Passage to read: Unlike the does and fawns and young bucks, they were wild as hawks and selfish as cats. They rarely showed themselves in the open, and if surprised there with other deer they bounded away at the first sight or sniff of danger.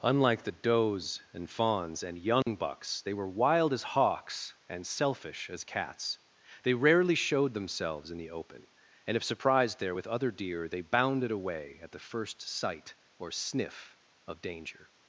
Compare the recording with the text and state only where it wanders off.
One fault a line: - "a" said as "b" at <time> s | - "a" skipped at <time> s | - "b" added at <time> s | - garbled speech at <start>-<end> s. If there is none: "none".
none